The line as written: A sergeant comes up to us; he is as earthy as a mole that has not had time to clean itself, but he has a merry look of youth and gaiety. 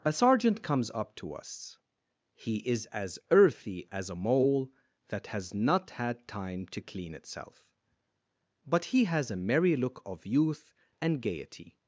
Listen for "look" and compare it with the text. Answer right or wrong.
right